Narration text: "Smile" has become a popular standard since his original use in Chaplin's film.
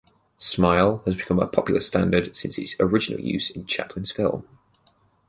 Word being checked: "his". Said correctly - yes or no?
no